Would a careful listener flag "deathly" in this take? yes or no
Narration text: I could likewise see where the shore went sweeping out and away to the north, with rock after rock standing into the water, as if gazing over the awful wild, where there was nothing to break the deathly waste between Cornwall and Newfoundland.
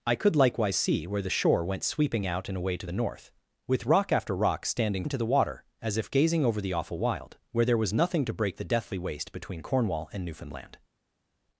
no